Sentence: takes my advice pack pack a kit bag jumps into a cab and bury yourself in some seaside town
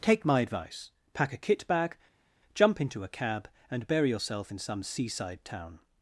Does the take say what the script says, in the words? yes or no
no